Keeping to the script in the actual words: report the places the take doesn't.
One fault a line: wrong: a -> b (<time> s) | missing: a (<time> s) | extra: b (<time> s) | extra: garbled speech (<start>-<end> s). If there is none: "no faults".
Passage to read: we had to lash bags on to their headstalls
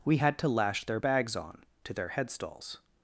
extra: their (0.8 s)